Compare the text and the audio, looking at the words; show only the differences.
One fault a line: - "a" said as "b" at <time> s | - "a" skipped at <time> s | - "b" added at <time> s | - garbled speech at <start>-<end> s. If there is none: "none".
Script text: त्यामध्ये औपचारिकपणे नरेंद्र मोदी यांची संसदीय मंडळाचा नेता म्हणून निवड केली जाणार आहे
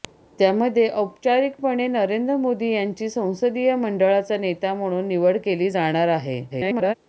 - garbled speech at 6.5-6.9 s